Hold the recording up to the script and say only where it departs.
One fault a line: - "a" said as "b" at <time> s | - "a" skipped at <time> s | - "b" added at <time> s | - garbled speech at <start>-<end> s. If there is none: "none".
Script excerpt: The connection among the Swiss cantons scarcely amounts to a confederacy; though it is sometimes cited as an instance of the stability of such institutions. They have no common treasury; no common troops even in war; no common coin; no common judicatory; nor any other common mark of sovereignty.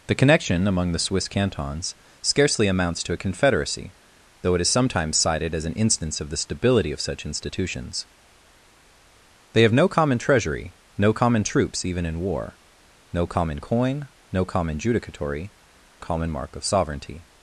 - "nor any other" skipped at 15.5 s